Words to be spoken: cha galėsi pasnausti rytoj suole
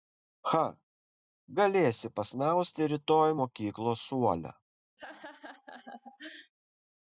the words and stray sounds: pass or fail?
fail